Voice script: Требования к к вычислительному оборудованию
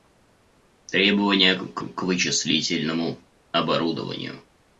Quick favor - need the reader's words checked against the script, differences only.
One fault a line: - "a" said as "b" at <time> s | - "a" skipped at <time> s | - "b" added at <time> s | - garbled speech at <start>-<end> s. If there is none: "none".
none